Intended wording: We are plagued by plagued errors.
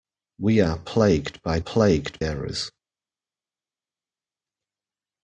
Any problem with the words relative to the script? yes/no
no